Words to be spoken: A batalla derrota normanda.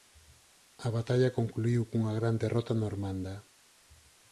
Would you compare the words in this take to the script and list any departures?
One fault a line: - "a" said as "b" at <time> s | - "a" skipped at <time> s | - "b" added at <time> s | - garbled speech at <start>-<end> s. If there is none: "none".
- "concluíu cunha gran" added at 1.4 s